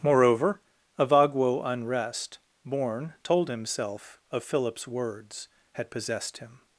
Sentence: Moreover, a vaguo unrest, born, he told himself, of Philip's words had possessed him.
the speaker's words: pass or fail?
fail